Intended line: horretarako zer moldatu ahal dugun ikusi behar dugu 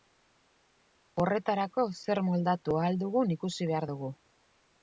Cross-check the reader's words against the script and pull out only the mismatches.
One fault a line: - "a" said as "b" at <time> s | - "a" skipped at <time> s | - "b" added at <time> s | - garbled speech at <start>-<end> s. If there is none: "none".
none